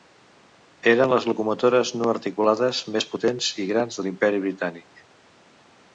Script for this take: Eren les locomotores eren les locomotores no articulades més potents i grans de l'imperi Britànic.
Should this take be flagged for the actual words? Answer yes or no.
yes